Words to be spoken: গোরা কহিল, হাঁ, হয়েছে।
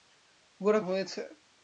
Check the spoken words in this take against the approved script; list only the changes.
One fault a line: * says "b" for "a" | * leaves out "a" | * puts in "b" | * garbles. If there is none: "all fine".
* leaves out "কহিল হাঁ"